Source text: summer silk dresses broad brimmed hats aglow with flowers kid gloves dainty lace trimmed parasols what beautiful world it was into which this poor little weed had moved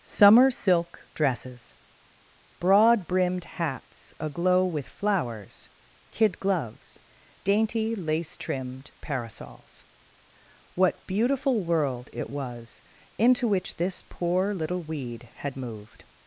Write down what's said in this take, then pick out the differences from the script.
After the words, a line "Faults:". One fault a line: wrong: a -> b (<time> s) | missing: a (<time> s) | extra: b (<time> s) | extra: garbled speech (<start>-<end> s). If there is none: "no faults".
summer silk dresses broad brimmed hats aglow with flowers kid gloves dainty lace trimmed parasols what beautiful world it was into which this poor little weed had moved
Faults:
no faults